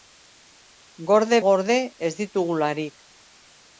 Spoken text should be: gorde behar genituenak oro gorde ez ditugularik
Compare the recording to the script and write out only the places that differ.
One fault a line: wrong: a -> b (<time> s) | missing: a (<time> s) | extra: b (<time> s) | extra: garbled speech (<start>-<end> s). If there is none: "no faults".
missing: behar genituenak oro (1.4 s)